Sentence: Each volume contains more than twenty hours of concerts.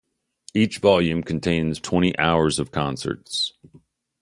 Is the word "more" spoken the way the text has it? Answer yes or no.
no